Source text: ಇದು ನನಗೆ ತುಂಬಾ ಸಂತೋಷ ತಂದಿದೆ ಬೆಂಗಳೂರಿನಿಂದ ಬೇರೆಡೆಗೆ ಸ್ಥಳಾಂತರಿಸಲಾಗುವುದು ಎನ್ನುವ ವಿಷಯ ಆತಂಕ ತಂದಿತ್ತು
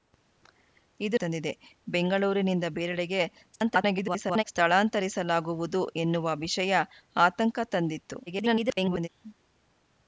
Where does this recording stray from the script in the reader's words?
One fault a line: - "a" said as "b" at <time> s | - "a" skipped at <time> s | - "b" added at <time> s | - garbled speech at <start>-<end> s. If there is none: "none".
- "ನನಗೆ ತುಂಬಾ ಸಂತೋಷ" skipped at 1.2 s
- garbled speech at 3.5-4.4 s
- garbled speech at 8.3-9.1 s